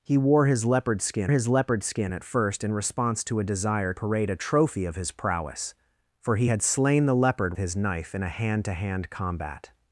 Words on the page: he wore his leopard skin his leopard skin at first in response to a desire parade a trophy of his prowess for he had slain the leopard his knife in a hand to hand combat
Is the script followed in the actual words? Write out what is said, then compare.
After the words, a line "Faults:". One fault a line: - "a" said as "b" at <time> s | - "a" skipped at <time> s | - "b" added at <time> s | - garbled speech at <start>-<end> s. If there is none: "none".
he wore his leopard skin his leopard skin at first in response to a desire parade a trophy of his prowess for he had slain the leopard his knife in a hand to hand combat
Faults:
none